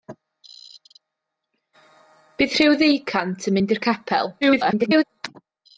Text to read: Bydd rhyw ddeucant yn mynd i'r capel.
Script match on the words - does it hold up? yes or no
no